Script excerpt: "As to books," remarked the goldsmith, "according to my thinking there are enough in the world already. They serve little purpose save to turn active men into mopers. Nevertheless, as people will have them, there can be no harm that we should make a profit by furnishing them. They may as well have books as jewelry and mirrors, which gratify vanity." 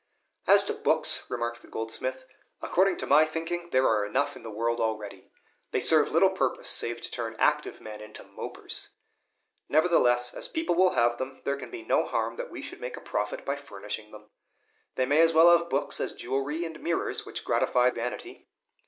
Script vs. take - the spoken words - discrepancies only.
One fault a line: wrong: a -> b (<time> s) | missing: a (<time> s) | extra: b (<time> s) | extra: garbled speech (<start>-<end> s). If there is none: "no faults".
no faults